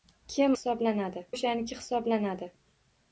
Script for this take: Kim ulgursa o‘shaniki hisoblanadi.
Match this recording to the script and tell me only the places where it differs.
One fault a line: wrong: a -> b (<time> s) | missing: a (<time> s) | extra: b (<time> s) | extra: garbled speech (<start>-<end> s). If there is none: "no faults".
wrong: ulgursa -> hisoblanadi (0.6 s)